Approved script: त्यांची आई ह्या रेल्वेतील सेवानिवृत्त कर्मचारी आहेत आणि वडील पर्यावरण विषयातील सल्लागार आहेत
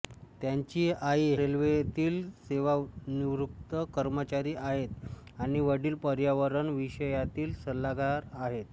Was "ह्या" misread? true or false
true